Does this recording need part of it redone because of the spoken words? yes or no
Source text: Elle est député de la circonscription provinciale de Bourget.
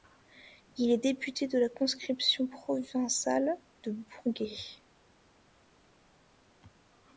yes